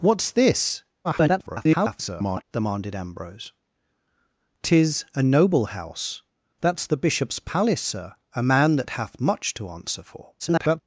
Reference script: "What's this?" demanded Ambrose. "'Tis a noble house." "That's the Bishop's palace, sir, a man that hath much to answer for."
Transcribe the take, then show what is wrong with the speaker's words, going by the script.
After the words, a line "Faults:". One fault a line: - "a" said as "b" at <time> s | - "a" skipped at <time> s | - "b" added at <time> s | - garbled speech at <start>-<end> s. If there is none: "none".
"What's this?" [garbled] demanded Ambrose. "'Tis a noble house." "That's the Bishop's palace, sir, a man that hath much to answer for." [garbled]
Faults:
- garbled speech at 1.0-2.4 s
- garbled speech at 10.4-10.8 s